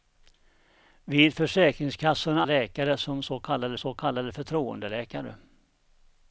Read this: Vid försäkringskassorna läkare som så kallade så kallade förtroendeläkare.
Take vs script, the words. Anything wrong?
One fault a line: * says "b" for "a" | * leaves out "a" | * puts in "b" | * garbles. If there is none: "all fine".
all fine